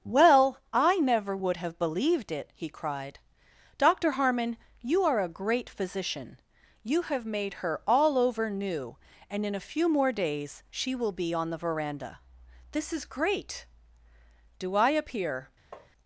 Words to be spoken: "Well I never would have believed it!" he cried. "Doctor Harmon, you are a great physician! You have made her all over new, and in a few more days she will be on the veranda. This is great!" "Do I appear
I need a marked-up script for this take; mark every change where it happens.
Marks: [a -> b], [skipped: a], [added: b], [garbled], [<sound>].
"Well I never would have believed it!" he cried. "Doctor Harmon, you are a great physician! You have made her all over new, and in a few more days she will be on the veranda. This is great!" "Do I appear [tap]